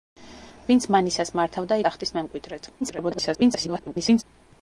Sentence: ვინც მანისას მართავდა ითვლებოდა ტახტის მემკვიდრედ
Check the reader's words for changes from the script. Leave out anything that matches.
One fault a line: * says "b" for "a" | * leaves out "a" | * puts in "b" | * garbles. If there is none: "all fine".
* leaves out "ითვლებოდა"
* garbles